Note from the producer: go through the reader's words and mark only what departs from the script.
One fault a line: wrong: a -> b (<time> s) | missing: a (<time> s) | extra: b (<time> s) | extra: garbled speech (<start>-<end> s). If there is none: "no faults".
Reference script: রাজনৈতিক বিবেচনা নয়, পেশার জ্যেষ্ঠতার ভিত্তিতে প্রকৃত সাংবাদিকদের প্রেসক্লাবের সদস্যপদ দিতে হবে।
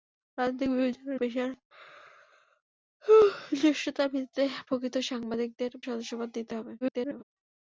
missing: নয় (1.1 s)
missing: প্রেসক্লাবের (5.7 s)
extra: garbled speech (6.8-7.2 s)